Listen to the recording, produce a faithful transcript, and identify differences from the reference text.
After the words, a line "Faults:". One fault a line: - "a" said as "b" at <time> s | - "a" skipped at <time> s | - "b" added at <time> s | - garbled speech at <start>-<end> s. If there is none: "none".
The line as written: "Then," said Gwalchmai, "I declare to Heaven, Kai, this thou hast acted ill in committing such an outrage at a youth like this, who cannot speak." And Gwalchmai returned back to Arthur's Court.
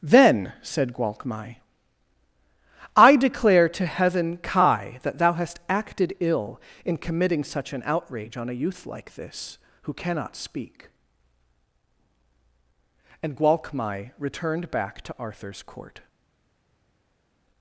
"Then," said Gwalchmai, "I declare to Heaven, Kai, that thou hast acted ill in committing such an outrage on a youth like this, who cannot speak." And Gwalchmai returned back to Arthur's Court.
Faults:
- "this" said as "that" at 5.0 s
- "at" said as "on" at 8.3 s